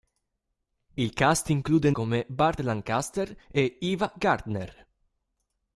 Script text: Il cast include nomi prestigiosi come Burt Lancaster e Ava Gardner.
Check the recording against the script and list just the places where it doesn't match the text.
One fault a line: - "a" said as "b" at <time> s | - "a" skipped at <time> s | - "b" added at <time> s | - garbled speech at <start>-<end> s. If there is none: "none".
- "nomi prestigiosi" skipped at 1.9 s